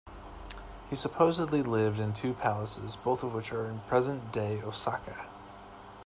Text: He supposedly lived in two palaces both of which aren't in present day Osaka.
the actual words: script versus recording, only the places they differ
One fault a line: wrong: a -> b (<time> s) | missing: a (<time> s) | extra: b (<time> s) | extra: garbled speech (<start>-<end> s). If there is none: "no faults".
wrong: aren't -> are (3.5 s)